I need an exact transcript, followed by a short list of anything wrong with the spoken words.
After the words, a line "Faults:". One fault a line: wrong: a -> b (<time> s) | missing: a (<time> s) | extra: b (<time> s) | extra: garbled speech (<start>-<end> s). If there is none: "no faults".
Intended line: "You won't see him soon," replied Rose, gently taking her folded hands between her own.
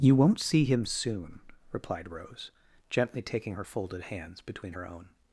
"You won't see him soon," replied Rose, gently taking her folded hands between her own.
Faults:
no faults